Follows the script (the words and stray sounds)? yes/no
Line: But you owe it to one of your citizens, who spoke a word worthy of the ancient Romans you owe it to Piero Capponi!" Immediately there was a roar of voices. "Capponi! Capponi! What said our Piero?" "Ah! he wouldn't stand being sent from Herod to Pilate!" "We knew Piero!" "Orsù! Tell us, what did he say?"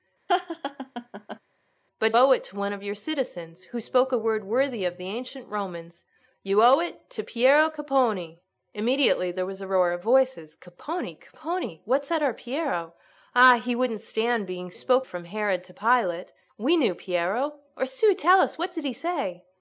no